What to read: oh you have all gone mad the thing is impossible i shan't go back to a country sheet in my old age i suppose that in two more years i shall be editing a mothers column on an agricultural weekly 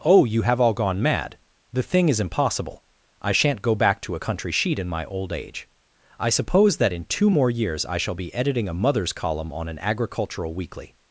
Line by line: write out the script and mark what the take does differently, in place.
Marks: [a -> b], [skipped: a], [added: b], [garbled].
oh you have all gone mad the thing is impossible i shan't go back to a country sheet in my old age i suppose that in two more years i shall be editing a mothers column on an agricultural weekly